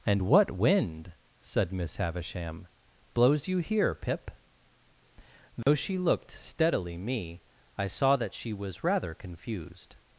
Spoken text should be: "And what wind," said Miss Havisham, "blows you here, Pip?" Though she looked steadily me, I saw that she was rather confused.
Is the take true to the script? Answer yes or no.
yes